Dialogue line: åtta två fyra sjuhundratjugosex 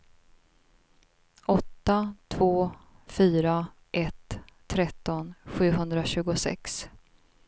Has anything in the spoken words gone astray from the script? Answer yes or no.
yes